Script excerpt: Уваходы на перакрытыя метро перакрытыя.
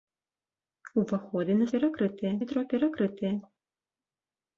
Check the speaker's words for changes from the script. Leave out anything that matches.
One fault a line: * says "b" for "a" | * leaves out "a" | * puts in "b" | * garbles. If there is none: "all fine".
all fine